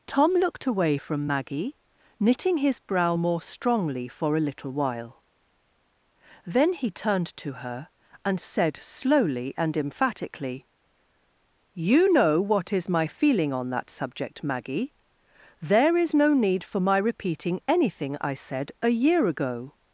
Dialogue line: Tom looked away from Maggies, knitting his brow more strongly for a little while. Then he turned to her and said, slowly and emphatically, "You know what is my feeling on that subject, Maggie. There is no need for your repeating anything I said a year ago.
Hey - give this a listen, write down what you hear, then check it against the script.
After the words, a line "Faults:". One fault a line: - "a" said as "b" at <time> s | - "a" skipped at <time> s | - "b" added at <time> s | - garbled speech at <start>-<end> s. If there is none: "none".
Tom looked away from Maggie, knitting his brow more strongly for a little while. Then he turned to her and said, slowly and emphatically, "You know what is my feeling on that subject, Maggie. There is no need for my repeating anything I said a year ago.
Faults:
- "Maggies" said as "Maggie" at 1.3 s
- "your" said as "my" at 16.8 s